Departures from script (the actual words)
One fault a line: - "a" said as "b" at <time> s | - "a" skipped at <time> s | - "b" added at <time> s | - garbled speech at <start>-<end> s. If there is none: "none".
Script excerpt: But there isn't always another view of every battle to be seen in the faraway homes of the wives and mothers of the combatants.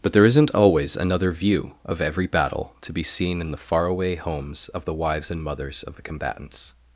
none